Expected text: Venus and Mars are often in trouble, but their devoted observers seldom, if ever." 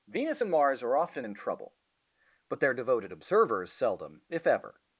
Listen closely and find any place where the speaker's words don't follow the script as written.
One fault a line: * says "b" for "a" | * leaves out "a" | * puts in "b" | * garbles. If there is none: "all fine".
all fine